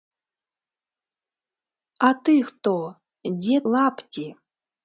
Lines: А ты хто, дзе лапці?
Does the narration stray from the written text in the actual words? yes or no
no